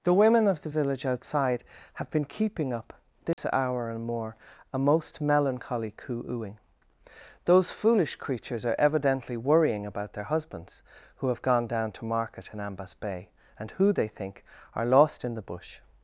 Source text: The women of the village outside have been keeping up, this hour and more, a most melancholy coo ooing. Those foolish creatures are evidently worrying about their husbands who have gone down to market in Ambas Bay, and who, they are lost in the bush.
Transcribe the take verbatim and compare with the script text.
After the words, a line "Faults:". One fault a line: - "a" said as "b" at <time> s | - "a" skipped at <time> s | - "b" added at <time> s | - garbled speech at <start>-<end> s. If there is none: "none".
The women of the village outside have been keeping up, this hour and more, a most melancholy coo ooing. Those foolish creatures are evidently worrying about their husbands who have gone down to market in Ambas Bay, and who, they think, are lost in the bush.
Faults:
- "think" added at 14.1 s